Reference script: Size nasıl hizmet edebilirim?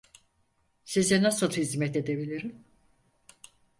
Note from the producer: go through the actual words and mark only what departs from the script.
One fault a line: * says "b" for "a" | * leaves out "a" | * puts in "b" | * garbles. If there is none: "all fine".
all fine